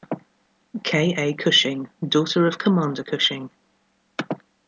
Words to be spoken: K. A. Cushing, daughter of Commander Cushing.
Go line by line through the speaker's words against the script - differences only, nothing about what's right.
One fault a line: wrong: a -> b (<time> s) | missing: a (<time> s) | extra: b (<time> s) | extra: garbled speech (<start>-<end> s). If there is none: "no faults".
no faults